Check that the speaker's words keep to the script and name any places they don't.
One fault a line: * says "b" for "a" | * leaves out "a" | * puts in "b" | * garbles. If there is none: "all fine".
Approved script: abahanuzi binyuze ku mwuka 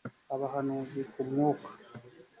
* leaves out "binyuze"